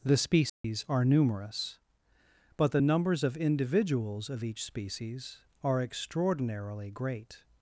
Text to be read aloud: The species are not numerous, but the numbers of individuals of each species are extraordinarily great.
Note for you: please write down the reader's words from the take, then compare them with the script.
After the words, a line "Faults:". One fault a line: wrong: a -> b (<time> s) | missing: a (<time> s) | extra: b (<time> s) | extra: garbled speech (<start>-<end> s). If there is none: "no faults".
The species are numerous, but the numbers of individuals of each species are extraordinarily great.
Faults:
missing: not (1.1 s)